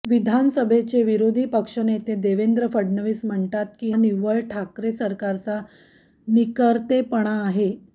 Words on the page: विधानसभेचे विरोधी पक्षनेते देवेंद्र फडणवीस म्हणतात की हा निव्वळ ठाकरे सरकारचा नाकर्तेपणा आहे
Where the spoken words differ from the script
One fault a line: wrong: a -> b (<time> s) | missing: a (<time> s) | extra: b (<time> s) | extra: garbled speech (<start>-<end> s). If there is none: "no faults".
missing: हा (3.9 s)